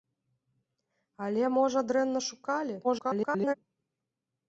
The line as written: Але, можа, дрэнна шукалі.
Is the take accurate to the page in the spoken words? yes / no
no